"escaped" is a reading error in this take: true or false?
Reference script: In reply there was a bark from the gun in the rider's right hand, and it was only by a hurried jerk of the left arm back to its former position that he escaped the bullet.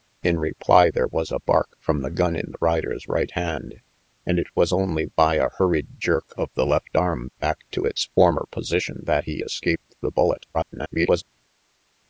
false